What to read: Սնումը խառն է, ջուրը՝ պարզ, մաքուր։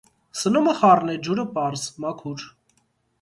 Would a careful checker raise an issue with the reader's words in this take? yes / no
no